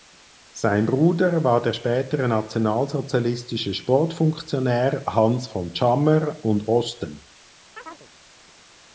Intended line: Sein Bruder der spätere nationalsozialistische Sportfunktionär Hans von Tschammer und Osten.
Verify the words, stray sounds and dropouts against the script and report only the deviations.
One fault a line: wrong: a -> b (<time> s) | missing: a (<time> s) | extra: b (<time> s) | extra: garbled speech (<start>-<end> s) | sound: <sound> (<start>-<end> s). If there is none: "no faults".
extra: war (1.4 s)
sound: chirp (7.7-8.1 s)